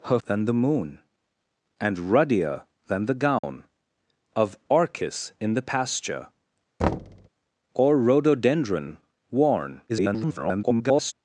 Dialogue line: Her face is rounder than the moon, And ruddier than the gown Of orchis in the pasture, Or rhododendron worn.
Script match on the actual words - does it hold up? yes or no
no